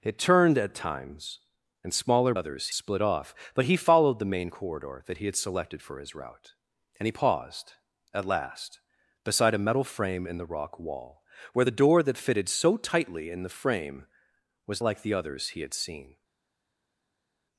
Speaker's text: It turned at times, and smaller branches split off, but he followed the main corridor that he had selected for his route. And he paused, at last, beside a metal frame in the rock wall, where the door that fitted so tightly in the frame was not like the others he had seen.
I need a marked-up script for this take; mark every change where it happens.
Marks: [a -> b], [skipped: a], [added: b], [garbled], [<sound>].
It turned at times, and smaller [branches -> others] split off, but he followed the main corridor that he had selected for his route. And he paused, at last, beside a metal frame in the rock wall, where the door that fitted so tightly in the frame was [skipped: not] like the others he had seen.